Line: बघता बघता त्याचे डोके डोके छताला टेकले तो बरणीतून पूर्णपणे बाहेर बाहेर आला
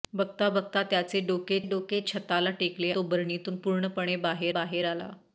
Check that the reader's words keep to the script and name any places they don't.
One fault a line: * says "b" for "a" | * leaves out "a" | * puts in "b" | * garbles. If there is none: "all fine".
all fine